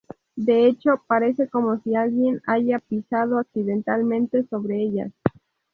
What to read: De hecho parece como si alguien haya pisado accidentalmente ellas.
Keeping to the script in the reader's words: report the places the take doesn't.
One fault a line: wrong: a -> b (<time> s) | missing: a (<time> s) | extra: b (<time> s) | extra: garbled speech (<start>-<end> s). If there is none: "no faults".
extra: sobre (4.5 s)